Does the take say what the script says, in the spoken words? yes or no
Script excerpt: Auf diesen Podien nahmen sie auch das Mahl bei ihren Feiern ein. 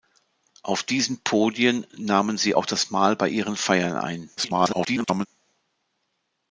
no